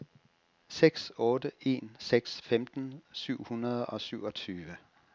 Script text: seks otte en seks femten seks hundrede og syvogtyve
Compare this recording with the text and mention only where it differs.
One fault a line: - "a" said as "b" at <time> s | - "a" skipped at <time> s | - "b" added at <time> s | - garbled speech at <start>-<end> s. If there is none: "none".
- "seks" said as "syv" at 3.1 s